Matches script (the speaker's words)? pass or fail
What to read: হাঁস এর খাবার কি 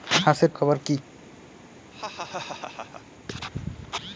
pass